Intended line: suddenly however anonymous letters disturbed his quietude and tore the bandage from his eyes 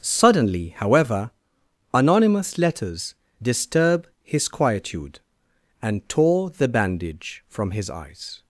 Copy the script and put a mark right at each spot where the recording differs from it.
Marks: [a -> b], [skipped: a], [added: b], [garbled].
suddenly however anonymous letters [disturbed -> disturb] his quietude and tore the bandage from his eyes